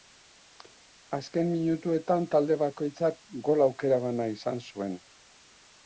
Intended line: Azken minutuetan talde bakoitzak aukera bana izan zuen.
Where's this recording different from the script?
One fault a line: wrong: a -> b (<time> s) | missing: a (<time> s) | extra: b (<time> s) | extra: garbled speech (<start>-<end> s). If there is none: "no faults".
extra: gol (3.5 s)